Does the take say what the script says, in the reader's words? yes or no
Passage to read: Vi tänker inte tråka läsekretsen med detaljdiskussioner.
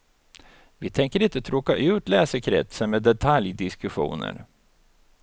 no